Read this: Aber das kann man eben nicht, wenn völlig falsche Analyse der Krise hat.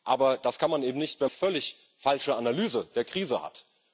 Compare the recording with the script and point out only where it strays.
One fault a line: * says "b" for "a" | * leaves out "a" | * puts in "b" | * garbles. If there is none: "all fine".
all fine